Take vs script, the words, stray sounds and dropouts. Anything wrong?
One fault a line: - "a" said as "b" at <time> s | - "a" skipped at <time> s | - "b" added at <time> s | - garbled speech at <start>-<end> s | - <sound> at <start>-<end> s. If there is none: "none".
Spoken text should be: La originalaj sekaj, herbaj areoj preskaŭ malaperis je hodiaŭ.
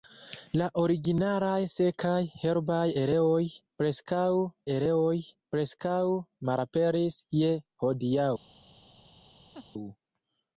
- "areoj preskaŭ" added at 4.7 s
- laugh at 9.5-9.7 s